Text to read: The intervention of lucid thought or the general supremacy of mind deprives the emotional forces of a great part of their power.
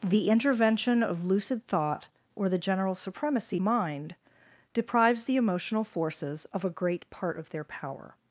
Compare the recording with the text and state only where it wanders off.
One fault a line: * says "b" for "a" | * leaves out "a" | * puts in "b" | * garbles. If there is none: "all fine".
* leaves out "of"